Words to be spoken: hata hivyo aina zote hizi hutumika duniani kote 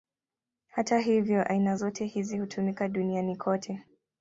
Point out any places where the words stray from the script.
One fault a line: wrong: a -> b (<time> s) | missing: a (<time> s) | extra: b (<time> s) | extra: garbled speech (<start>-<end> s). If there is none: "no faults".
no faults